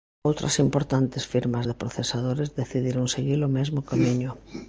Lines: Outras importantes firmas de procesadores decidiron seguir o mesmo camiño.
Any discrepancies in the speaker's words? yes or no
no